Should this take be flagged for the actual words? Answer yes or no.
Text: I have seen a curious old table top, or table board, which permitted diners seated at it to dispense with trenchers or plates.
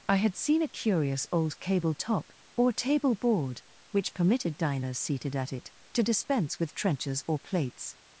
yes